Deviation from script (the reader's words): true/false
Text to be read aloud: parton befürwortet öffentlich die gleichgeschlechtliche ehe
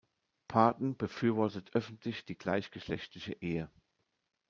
false